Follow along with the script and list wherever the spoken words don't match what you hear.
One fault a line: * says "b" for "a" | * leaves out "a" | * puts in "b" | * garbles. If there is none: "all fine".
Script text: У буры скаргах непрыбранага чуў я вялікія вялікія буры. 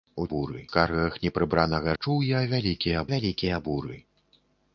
all fine